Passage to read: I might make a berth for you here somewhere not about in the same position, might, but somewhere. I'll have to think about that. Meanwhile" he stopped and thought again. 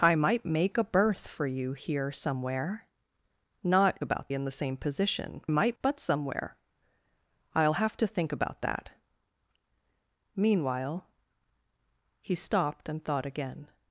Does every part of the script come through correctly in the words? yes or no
yes